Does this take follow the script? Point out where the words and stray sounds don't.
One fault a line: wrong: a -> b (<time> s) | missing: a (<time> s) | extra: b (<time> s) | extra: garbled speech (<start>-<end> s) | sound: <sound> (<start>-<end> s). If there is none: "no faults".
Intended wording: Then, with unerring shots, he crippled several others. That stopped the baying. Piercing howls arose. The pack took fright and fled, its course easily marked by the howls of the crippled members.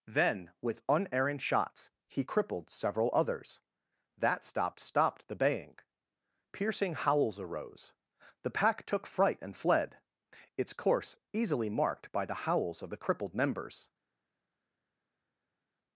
extra: stopped (4.8 s)